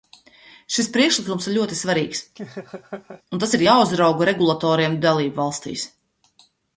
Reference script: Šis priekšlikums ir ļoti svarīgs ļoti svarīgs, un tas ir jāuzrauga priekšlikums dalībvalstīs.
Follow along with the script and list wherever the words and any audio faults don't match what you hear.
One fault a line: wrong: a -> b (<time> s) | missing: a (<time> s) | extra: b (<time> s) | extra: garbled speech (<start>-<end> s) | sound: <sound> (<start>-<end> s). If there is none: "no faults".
missing: ļoti svarīgs (2.2 s)
sound: laugh (2.4-3.2 s)
wrong: priekšlikums -> regulatoriem (4.3 s)